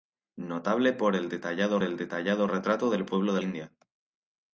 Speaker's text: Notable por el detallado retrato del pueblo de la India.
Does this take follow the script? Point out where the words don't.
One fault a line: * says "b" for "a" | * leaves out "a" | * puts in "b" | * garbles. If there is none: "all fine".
* puts in "el detallado"
* leaves out "la"